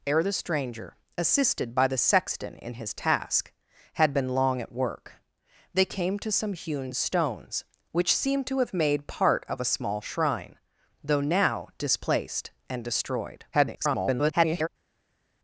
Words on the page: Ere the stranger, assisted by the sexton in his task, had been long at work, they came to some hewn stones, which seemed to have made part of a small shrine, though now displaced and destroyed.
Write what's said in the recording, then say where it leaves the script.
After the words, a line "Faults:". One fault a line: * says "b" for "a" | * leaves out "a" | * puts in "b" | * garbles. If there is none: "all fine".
Ere the stranger, assisted by the sexton in his task, had been long at work, they came to some hewn stones, which seemed to have made part of a small shrine, though now displaced and destroyed. [garbled]
Faults:
* garbles